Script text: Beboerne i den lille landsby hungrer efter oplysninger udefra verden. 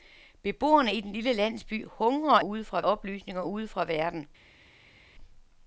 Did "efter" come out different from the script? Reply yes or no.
yes